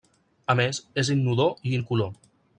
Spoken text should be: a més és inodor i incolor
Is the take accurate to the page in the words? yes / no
yes